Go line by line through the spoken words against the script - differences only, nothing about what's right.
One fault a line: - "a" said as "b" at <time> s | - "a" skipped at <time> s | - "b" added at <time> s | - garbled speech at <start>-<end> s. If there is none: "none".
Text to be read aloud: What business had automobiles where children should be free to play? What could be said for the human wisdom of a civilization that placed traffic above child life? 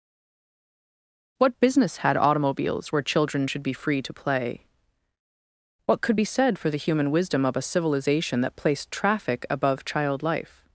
none